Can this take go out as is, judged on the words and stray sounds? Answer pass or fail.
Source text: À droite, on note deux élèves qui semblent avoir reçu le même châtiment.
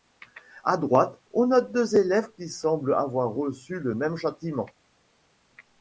pass